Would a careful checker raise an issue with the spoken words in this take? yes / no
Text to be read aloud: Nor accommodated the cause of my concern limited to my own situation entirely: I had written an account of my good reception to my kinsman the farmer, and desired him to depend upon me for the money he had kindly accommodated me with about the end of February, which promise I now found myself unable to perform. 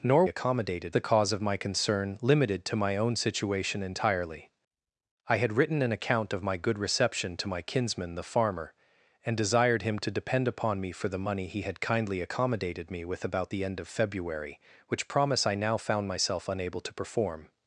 no